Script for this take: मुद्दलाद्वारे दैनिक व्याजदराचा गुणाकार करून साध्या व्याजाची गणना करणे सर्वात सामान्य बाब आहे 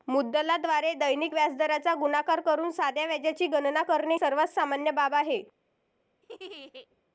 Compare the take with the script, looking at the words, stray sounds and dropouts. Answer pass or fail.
fail